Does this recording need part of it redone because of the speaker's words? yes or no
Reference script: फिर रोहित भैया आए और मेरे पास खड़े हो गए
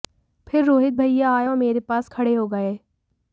no